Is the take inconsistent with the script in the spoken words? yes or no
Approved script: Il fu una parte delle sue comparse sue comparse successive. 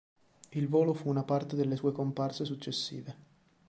yes